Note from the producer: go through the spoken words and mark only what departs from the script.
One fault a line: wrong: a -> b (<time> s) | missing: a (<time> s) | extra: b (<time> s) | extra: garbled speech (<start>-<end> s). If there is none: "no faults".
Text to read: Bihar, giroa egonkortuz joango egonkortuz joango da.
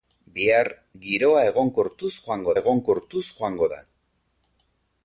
no faults